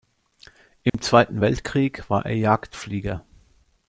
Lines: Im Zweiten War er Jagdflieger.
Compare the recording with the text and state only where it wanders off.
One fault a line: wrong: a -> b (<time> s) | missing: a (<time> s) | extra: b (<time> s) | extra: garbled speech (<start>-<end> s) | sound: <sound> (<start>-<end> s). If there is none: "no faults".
sound: dropout (0.9-0.9 s)
extra: Weltkrieg (1.4 s)